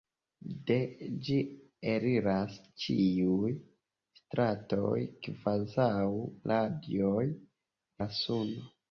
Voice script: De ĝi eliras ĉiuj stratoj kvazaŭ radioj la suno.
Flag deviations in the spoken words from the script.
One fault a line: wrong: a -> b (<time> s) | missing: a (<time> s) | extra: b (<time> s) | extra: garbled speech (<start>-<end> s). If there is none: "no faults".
no faults